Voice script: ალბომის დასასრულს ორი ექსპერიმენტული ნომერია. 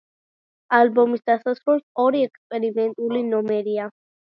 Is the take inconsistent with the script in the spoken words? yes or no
no